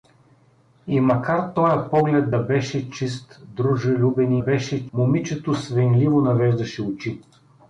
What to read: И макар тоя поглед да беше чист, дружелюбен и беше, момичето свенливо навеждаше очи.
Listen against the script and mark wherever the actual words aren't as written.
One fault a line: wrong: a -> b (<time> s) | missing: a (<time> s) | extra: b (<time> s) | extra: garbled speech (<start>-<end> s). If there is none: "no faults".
no faults